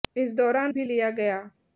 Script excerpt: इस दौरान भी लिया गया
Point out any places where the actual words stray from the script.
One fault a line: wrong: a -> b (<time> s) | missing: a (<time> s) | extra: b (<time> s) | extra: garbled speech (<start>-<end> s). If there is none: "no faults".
no faults